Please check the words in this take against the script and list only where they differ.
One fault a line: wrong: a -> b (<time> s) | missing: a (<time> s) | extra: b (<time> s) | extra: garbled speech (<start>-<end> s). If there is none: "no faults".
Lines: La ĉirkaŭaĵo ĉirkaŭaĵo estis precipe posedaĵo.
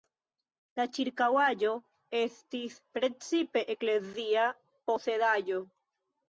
missing: ĉirkaŭaĵo (1.7 s)
extra: eklezia (3.8 s)